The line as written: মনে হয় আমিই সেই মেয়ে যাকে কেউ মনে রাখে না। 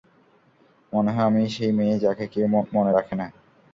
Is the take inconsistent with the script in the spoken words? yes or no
no